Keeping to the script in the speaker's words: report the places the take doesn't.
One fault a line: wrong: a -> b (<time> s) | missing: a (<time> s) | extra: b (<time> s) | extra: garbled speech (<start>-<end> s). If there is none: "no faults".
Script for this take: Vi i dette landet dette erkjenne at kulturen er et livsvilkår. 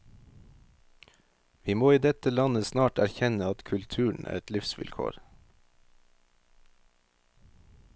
extra: må (1.8 s)
wrong: dette -> snart (2.7 s)